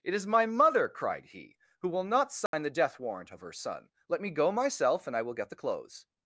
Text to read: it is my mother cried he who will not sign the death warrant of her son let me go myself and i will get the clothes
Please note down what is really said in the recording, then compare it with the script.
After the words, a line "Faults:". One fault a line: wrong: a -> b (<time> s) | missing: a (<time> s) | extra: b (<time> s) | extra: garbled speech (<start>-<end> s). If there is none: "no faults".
it is my mother cried he who will not sign the death warrant of her son let me go myself and i will get the clothes
Faults:
no faults